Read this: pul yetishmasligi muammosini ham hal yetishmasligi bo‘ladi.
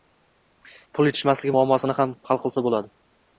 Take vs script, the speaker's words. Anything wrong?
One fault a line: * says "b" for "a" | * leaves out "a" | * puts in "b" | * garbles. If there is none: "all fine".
* says "qilsa" for "yetishmasligi"